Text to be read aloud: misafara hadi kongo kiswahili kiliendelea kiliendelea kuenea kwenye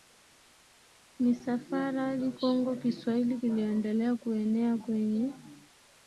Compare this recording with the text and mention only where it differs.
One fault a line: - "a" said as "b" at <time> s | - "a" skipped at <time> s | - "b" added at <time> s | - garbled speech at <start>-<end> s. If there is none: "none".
- "kiliendelea" skipped at 4.1 s